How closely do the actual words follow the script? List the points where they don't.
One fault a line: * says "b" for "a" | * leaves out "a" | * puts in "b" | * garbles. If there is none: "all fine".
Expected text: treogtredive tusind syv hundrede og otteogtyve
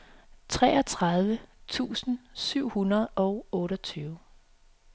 all fine